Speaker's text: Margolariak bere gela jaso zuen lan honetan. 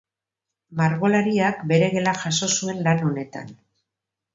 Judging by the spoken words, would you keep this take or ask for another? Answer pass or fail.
pass